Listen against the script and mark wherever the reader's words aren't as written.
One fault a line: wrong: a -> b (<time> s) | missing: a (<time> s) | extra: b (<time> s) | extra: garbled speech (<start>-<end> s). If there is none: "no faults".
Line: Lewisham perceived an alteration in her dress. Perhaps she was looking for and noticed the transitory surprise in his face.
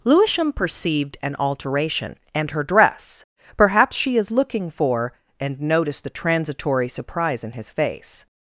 wrong: in -> and (2.3 s)
wrong: was -> is (4.2 s)